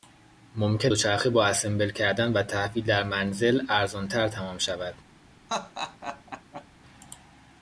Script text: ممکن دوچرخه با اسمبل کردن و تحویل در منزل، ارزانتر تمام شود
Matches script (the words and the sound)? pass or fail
fail